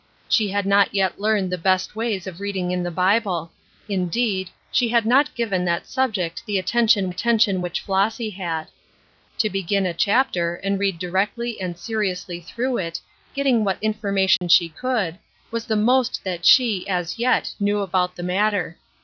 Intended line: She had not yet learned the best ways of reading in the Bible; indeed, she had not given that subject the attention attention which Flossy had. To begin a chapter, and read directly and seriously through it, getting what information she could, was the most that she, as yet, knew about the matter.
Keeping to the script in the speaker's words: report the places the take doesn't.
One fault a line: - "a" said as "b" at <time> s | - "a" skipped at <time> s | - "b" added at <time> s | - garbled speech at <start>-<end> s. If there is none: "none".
none